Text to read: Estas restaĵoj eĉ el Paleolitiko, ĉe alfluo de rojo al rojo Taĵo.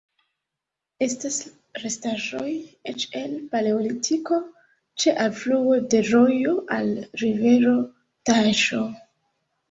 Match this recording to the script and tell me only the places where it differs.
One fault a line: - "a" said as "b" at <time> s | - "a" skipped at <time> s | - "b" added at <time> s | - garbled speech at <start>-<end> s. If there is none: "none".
- "rojo" said as "rivero" at 7.2 s